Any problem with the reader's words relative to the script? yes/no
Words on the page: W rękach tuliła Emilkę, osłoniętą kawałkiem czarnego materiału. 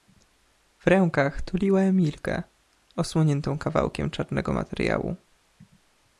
no